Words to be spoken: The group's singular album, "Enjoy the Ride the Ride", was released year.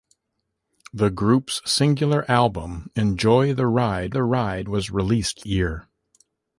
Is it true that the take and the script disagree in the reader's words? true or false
false